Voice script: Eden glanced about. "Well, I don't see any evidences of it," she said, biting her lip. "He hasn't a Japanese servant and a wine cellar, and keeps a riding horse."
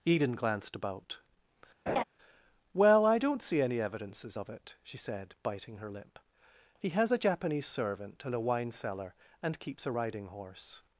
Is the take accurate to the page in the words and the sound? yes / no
no